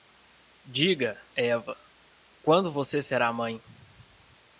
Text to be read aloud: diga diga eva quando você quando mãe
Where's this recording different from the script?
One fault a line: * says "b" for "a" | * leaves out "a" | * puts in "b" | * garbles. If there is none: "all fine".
* leaves out "diga"
* says "será" for "quando"